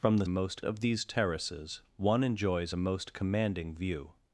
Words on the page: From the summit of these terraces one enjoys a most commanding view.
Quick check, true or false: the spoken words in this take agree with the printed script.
false